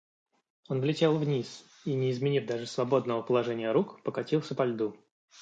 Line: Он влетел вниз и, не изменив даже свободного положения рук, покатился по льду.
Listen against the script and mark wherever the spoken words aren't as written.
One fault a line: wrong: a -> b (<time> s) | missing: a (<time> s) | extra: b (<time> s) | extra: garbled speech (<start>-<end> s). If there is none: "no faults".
no faults